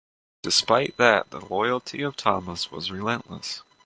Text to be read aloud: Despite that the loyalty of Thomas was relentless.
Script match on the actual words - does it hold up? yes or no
yes